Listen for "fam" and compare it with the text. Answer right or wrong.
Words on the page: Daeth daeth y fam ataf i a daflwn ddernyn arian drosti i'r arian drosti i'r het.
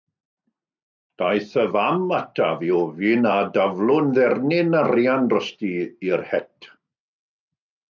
right